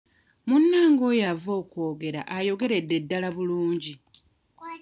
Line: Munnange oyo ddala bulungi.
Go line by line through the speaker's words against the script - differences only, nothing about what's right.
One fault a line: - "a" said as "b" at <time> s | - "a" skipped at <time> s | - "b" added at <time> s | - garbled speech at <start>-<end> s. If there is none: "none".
- "ava okwogera ayogeredde" added at 1.3 s